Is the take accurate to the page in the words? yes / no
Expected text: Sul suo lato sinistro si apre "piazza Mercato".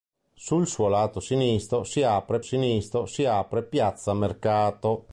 no